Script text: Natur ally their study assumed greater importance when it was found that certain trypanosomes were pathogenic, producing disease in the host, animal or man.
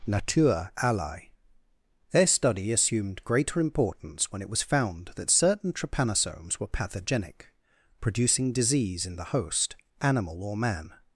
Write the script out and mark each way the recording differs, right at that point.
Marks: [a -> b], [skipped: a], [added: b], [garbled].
Natur ally their study assumed greater importance when it was found that certain trypanosomes were pathogenic, producing disease in the host, animal or man.